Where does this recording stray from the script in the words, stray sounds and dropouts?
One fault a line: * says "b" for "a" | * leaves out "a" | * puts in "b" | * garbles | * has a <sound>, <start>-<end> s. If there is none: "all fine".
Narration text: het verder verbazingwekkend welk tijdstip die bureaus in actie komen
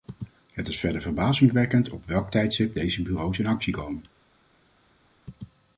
* puts in "is"
* puts in "op"
* says "deze" for "die"